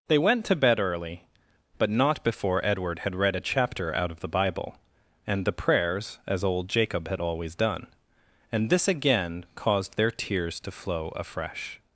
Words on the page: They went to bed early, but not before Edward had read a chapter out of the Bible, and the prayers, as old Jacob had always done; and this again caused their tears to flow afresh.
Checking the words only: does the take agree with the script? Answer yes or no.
yes